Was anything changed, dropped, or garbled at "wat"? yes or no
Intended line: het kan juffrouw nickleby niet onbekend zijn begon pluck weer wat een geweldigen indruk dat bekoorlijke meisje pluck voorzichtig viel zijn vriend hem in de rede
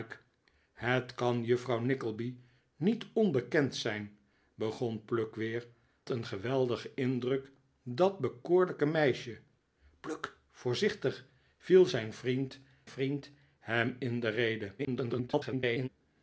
yes